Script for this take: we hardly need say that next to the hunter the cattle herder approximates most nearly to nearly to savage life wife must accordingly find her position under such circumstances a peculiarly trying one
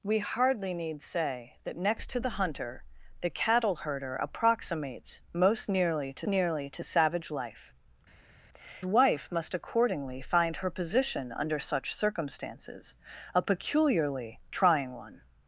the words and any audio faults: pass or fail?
pass